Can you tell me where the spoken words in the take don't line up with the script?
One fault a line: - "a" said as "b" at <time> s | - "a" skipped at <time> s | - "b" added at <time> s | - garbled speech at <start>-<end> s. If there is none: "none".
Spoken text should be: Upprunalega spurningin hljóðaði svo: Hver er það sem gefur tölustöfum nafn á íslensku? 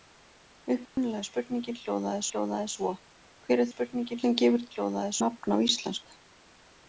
- "hljóðaði" added at 2.3 s
- "það" said as "spurningin" at 3.7 s
- "tölustöfum" said as "hljóðaði" at 4.7 s